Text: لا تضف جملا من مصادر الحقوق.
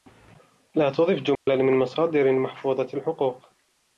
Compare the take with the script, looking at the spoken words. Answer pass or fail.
fail